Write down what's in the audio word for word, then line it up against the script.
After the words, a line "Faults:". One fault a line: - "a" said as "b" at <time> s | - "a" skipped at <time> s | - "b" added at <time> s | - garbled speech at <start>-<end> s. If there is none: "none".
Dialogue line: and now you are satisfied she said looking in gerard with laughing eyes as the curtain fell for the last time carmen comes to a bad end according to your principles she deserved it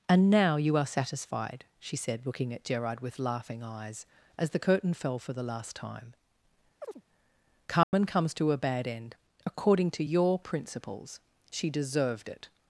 and now you are satisfied she said looking at gerard with laughing eyes as the curtain fell for the last time carmen comes to a bad end according to your principles she deserved it
Faults:
- "in" said as "at" at 2.5 s